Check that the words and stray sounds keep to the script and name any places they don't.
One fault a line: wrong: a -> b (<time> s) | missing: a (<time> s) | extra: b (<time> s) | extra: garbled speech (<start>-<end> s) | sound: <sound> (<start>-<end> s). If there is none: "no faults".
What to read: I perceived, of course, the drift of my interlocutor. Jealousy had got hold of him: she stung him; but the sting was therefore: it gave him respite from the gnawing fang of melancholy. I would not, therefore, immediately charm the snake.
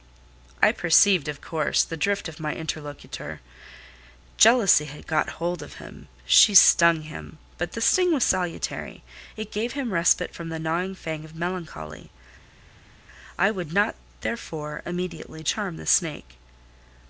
wrong: therefore -> salutary (8.2 s)